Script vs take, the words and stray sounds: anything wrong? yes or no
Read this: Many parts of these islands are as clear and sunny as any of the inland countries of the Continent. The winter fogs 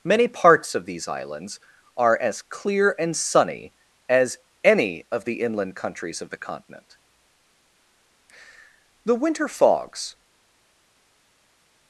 no